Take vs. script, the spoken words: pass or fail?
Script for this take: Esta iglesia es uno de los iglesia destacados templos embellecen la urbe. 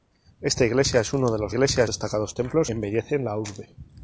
pass